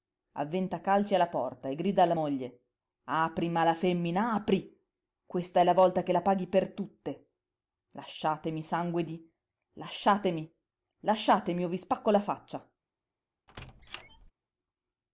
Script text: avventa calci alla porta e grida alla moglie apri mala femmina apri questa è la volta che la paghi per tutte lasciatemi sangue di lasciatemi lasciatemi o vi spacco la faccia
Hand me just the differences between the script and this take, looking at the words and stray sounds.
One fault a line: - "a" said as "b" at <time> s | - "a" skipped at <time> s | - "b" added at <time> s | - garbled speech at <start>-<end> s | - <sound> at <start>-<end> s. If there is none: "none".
- squeak at 13.5-14.3 s